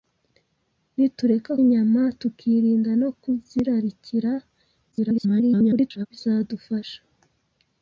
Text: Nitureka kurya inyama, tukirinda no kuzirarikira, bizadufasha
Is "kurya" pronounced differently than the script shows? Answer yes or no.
yes